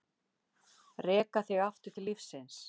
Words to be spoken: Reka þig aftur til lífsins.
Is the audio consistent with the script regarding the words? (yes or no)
yes